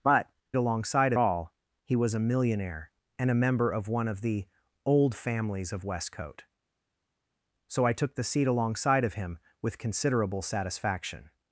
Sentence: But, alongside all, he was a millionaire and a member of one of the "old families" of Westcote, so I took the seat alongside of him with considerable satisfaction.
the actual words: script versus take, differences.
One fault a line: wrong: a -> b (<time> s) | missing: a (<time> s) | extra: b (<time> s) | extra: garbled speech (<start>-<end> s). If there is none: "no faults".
no faults